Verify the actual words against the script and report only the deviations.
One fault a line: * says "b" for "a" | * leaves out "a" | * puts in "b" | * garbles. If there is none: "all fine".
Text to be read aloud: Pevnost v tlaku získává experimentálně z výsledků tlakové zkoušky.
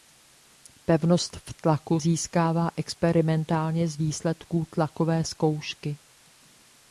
all fine